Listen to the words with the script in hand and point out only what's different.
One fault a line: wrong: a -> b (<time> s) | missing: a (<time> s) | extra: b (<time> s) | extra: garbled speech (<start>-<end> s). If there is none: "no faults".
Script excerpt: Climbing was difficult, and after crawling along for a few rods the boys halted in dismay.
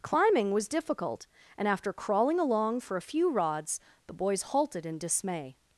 no faults